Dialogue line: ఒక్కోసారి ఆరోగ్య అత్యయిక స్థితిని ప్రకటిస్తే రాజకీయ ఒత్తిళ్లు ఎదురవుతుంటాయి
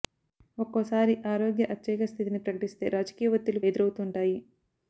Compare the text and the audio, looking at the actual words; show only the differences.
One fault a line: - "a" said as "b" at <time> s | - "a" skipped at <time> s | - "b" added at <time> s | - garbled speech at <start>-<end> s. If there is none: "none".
none